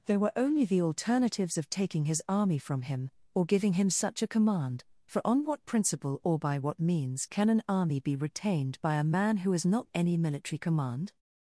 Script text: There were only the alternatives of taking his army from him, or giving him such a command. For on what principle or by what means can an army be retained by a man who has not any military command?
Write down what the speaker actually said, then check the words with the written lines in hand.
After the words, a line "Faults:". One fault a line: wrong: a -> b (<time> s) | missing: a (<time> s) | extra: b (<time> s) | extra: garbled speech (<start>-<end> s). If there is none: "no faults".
There were only the alternatives of taking his army from him, or giving him such a command. For on what principle or by what means can an army be retained by a man who has not any military command?
Faults:
no faults